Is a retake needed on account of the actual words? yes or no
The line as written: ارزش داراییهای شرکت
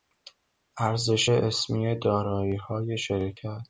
yes